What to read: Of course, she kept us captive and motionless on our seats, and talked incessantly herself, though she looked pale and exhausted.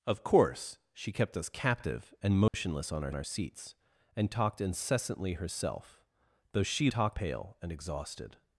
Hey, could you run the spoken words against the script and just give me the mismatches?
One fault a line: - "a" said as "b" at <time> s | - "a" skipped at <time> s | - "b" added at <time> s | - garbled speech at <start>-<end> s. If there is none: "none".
- "our" added at 3.1 s
- "looked" said as "talked" at 6.9 s